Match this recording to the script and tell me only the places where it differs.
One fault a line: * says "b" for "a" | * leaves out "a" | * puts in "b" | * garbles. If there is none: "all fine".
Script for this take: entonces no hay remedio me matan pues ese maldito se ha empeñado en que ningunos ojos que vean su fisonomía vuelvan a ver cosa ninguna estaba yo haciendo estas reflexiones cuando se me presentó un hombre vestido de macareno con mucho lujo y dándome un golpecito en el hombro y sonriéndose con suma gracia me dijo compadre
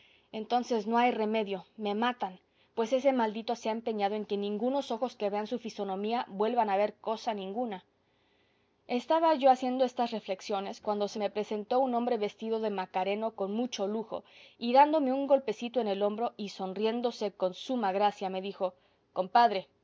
all fine